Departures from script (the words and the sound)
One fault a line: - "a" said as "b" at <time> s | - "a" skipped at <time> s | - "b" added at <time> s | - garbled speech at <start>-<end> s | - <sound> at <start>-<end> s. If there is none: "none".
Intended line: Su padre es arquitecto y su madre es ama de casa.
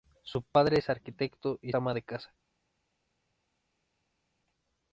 - "su madre es" skipped at 1.7 s